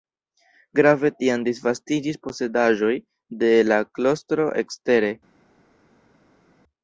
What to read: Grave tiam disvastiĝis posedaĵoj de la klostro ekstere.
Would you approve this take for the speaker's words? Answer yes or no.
yes